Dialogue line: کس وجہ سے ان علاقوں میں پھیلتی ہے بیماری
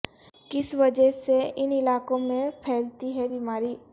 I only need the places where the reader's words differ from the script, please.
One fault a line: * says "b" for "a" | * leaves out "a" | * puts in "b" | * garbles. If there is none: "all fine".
all fine